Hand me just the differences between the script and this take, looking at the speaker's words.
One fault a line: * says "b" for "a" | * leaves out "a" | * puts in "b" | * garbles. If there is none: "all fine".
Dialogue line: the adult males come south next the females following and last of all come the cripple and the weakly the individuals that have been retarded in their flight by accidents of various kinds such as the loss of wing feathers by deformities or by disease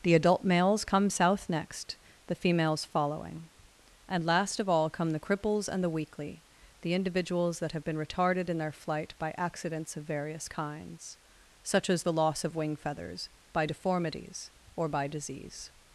* says "cripples" for "cripple"